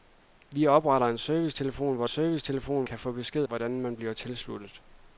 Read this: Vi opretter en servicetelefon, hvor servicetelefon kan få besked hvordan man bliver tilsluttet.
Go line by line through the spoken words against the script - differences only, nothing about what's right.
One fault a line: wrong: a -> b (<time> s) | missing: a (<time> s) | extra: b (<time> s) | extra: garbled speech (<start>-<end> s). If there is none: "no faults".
no faults